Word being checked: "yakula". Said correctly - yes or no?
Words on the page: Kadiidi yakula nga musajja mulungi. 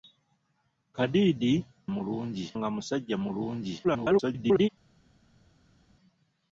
no